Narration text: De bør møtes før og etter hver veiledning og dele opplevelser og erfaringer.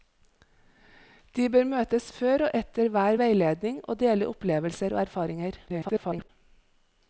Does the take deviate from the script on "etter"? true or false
false